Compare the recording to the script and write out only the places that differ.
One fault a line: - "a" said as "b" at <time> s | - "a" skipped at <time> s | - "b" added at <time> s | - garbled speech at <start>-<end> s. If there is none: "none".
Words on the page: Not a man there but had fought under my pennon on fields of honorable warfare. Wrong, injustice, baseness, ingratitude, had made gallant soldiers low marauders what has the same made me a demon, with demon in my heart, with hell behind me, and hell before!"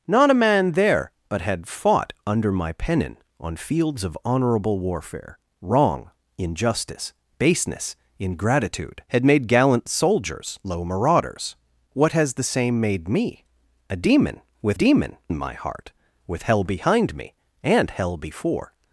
none